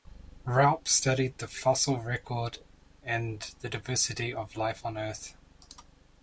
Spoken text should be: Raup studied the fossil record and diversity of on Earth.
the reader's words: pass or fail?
fail